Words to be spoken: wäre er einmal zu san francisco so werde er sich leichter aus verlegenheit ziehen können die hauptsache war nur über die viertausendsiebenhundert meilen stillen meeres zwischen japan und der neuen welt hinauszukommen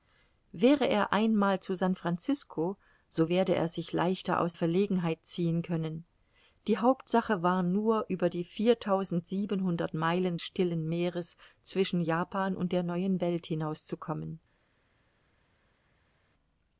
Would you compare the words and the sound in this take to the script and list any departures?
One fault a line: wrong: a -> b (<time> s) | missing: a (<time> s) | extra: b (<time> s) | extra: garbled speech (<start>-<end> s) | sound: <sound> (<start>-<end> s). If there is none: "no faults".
no faults